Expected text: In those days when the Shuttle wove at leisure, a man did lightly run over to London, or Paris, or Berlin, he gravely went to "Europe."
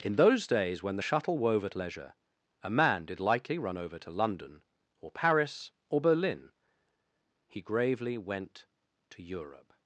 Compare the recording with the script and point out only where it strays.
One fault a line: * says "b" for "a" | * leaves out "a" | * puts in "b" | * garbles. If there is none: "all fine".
all fine